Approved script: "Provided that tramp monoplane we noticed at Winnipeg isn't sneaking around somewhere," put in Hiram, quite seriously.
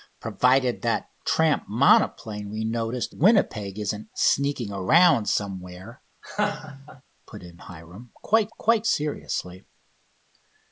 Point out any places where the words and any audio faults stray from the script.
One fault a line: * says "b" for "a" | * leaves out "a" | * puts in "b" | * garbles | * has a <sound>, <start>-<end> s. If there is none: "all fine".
* leaves out "at"
* has a laugh, 6.2-7.0 s
* puts in "quite"